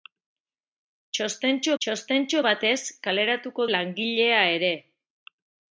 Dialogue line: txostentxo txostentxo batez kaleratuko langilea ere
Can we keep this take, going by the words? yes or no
yes